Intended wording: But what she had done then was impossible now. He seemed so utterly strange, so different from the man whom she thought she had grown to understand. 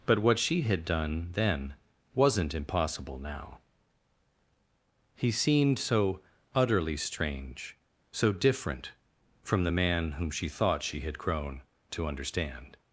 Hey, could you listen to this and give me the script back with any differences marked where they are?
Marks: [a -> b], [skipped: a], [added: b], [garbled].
But what she had done then [was -> wasn't] impossible now. He seemed so utterly strange, so different from the man whom she thought she had grown to understand.